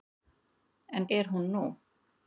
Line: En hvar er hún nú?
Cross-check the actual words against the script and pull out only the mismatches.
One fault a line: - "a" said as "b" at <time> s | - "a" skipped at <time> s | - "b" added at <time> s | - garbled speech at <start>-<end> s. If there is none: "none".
- "hvar" skipped at 1.1 s